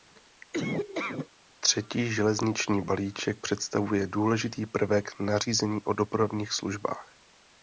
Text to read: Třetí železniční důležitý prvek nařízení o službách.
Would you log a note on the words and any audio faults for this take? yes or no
yes